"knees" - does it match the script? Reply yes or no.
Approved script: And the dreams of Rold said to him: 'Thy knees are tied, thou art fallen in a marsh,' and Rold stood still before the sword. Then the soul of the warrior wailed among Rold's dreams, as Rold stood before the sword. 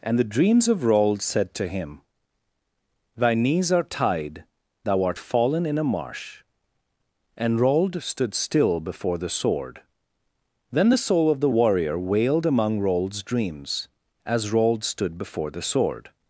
yes